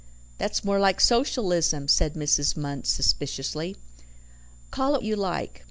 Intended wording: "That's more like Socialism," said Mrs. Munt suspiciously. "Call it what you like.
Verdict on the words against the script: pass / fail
fail